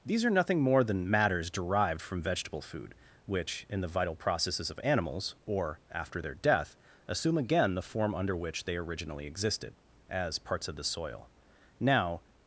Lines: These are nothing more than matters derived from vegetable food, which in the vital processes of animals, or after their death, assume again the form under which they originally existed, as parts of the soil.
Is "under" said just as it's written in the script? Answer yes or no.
yes